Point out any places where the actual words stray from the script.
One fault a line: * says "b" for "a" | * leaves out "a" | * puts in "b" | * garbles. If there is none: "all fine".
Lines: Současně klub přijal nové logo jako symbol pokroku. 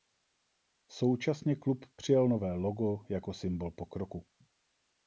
all fine